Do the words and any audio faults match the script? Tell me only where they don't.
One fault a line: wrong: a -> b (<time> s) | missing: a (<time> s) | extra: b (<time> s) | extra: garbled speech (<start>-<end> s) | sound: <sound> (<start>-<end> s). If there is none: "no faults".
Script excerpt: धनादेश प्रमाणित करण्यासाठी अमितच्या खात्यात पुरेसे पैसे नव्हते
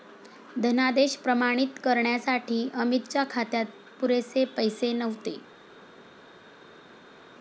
no faults